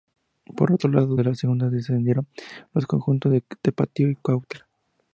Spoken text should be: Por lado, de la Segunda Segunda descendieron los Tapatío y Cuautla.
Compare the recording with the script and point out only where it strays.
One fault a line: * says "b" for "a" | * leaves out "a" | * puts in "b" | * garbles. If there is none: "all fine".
* puts in "otro"
* leaves out "Segunda"
* puts in "conjuntos de"